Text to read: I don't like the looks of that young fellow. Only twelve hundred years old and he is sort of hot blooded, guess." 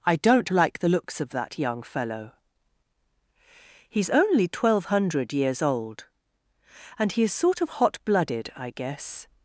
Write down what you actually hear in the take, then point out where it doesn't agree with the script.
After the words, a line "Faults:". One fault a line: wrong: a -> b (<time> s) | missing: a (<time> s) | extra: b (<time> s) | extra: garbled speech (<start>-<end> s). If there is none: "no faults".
I don't like the looks of that young fellow. He's only twelve hundred years old and he is sort of hot blooded, I guess."
Faults:
extra: He's (3.9 s)
extra: I (8.5 s)